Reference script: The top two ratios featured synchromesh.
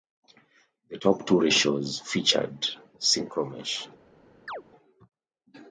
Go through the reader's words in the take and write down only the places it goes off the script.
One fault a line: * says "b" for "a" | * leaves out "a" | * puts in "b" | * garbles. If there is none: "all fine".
all fine